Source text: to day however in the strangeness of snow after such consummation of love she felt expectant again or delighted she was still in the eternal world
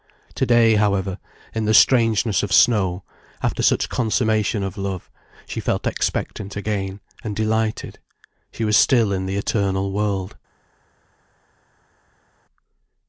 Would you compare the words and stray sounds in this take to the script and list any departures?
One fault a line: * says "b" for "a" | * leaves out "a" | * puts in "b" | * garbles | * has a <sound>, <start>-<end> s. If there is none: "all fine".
* says "and" for "or"